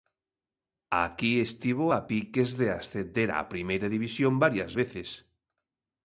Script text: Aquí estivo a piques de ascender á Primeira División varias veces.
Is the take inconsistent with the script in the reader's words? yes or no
no